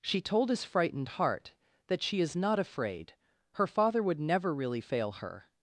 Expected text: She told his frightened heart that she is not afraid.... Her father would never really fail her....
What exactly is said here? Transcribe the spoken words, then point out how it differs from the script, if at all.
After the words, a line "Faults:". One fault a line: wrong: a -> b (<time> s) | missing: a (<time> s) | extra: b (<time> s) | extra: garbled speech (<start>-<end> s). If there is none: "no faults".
She told his frightened heart that she is not afraid.... Her father would never really fail her....
Faults:
no faults